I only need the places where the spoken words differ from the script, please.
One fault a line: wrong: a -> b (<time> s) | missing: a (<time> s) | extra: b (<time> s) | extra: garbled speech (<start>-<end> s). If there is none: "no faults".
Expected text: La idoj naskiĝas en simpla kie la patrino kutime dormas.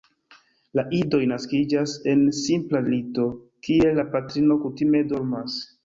extra: lito (2.9 s)